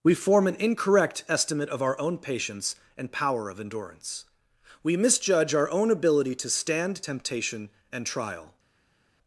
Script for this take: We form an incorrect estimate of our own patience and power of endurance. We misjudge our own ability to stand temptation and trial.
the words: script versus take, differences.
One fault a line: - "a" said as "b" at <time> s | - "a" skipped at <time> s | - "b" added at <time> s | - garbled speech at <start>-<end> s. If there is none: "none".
none